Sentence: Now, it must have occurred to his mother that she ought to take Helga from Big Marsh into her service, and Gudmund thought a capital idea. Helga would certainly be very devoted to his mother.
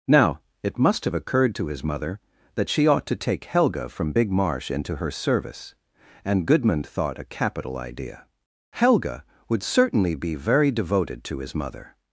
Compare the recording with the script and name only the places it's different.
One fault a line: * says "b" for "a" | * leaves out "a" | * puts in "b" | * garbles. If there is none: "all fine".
all fine